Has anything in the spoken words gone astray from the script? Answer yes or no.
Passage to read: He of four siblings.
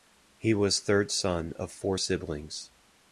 yes